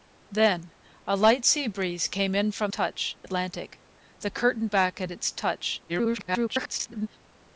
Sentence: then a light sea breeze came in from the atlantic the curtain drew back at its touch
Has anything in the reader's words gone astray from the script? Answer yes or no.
yes